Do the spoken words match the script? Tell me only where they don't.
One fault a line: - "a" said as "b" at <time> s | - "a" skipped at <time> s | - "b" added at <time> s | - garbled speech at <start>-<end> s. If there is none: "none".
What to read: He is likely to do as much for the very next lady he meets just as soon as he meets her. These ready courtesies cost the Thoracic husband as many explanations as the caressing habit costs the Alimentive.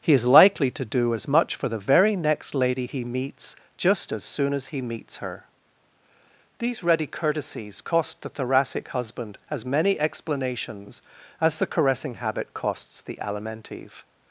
none